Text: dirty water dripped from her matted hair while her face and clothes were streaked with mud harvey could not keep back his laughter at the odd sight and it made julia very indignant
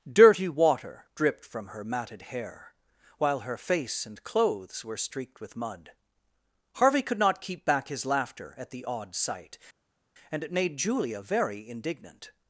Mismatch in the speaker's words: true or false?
false